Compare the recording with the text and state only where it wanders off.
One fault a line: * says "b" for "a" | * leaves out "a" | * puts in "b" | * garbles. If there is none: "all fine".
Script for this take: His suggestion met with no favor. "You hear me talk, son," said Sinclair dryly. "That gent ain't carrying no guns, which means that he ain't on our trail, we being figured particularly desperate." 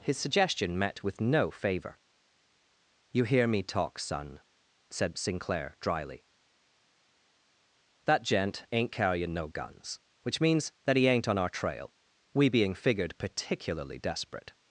all fine